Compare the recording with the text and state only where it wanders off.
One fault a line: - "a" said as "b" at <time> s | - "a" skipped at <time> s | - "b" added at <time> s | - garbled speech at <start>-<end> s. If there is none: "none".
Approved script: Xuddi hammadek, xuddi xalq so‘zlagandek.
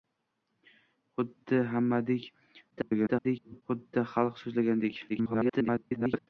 - garbled speech at 2.7-3.6 s
- garbled speech at 5.1-6.3 s